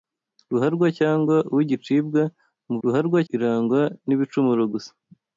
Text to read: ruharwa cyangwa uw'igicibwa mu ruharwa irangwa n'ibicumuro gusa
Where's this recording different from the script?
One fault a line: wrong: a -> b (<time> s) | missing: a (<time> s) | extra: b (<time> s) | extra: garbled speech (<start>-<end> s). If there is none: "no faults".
no faults